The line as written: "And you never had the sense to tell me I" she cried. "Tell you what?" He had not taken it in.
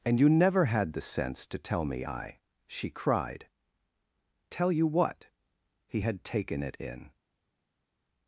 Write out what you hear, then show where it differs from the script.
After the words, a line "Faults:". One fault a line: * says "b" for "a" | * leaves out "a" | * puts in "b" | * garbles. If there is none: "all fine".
"And you never had the sense to tell me I" she cried. "Tell you what?" He had taken it in.
Faults:
* leaves out "not"